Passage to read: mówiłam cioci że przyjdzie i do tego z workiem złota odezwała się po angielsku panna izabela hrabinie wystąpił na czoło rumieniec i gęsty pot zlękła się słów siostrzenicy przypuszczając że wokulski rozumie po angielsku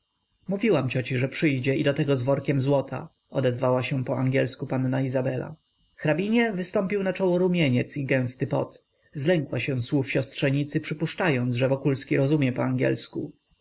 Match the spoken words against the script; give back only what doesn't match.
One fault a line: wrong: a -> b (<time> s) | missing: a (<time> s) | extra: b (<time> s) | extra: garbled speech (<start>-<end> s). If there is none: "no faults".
no faults